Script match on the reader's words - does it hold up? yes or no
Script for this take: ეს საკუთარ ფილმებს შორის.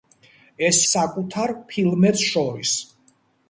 yes